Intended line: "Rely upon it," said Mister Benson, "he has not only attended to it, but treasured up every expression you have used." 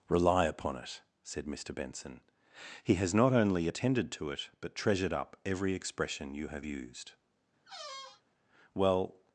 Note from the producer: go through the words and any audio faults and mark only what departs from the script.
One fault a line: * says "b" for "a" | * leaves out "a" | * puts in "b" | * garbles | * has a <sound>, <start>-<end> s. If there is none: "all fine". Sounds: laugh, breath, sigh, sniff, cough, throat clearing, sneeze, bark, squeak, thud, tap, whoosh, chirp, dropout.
* has a squeak, 7.7-8.2 s
* puts in "Well"